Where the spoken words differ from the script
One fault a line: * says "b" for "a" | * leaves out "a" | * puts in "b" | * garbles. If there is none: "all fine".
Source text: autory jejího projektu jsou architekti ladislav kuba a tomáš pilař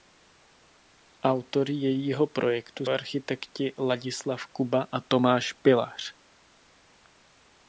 * leaves out "jsou"